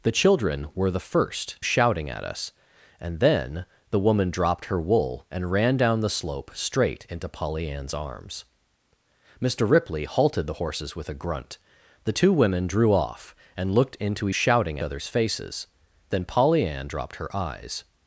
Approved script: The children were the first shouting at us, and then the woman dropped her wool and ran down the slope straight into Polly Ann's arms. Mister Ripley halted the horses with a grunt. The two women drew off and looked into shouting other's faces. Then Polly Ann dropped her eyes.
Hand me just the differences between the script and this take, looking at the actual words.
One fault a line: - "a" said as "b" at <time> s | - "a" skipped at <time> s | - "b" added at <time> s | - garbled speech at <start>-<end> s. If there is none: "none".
none